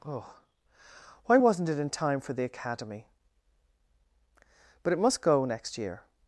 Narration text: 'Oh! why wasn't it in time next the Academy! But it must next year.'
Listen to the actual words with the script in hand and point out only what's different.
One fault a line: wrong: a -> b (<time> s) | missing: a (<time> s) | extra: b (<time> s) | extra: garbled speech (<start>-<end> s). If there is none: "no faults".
wrong: next -> for (2.2 s)
extra: go (5.2 s)